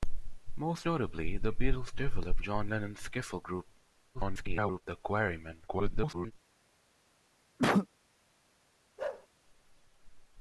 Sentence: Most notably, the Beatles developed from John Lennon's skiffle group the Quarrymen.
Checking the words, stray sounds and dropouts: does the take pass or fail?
fail